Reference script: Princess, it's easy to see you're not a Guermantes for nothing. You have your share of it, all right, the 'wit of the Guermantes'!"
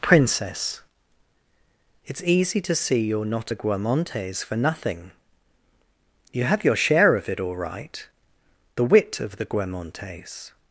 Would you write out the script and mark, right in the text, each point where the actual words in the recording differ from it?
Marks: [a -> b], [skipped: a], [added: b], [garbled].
Princess, it's easy to see you're not a Guermantes for nothing. You have your share of it, all right, the 'wit of the Guermantes'!"